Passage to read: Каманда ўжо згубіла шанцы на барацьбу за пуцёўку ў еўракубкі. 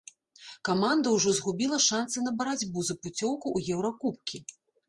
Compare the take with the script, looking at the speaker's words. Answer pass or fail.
pass